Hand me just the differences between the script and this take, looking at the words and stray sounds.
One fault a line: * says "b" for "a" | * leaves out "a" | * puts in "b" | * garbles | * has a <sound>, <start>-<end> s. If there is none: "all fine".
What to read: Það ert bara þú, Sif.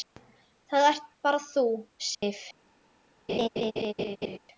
* has a dropout, 2.1-2.2 s
* has a laugh, 3.3-4.4 s